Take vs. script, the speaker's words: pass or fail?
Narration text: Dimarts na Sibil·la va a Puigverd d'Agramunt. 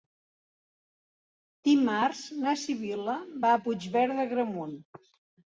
pass